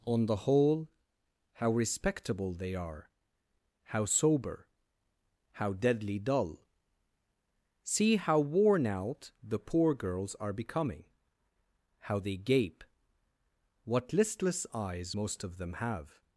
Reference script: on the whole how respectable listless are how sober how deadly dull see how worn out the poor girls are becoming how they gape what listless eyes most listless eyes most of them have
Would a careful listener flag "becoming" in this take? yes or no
no